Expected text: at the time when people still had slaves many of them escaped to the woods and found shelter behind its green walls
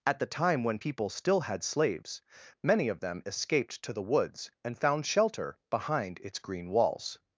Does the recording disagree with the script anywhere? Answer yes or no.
no